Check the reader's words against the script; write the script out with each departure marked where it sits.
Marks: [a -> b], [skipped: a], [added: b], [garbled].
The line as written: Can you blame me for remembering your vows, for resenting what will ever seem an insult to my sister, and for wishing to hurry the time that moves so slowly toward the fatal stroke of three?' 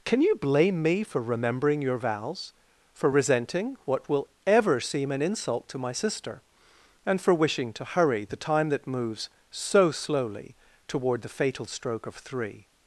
Can you blame me for remembering your vows, for resenting what will ever seem an insult to my sister, and for wishing to hurry the time that moves so slowly toward the fatal stroke of three?'